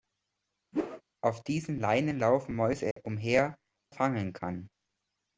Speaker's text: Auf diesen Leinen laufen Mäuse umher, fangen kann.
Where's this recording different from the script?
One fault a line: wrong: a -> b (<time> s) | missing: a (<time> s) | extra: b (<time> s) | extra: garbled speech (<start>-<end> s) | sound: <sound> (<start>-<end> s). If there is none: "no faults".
sound: whoosh (0.7-1.0 s)
sound: dropout (2.9-3.0 s)